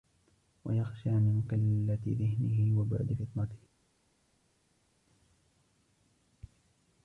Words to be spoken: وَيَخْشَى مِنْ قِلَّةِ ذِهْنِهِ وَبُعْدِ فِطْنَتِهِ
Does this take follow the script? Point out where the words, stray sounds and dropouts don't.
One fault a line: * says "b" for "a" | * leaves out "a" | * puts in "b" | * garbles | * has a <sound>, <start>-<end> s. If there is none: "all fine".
all fine